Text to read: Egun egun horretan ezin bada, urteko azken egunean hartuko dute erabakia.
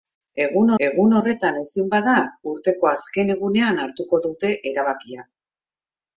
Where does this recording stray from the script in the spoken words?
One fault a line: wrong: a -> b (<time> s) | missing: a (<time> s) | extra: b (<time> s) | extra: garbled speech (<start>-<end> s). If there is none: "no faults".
no faults